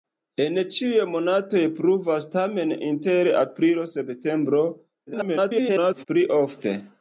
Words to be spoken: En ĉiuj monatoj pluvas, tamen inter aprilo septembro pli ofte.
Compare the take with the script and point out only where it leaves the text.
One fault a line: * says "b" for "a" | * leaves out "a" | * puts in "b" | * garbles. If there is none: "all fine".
* garbles